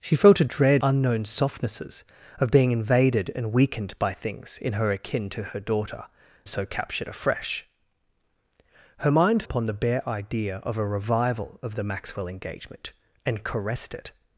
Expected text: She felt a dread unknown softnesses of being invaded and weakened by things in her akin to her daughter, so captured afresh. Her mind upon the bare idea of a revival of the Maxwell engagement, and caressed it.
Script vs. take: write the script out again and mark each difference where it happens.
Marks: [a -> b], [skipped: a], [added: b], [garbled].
She felt a dread unknown softnesses of being invaded and weakened by things in her akin to her daughter, so captured afresh. Her mind upon the bare idea of a revival of the Maxwell engagement, and caressed it.